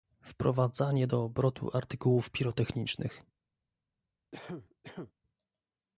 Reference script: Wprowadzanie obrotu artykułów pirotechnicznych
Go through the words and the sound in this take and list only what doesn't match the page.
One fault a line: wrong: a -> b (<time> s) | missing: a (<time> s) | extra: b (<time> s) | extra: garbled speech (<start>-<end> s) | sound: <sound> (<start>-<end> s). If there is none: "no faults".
extra: do (1.0 s)
sound: cough (4.3-5.1 s)